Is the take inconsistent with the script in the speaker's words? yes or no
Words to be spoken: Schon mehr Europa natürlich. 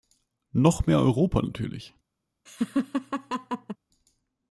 yes